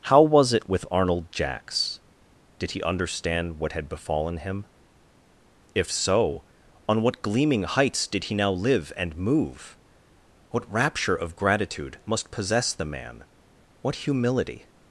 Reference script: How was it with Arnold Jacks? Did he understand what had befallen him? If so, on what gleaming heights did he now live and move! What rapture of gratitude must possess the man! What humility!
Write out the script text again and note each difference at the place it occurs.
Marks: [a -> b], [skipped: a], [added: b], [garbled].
How was it with Arnold Jacks? Did he understand what had befallen him? If so, on what gleaming heights did he now live and move! What rapture of gratitude must possess the man! What humility!